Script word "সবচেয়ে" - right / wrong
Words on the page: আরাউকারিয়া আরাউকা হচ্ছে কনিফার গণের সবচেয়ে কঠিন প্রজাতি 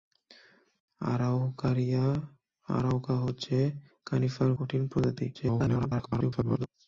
wrong